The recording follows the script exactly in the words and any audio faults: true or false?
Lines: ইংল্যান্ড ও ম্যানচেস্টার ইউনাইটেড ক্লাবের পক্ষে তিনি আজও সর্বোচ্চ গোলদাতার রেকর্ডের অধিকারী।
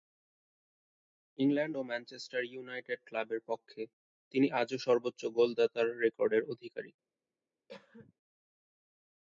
false